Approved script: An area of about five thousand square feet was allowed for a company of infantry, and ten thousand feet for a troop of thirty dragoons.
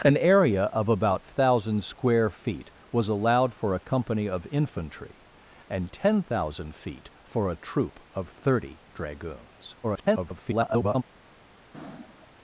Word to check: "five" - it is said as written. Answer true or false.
false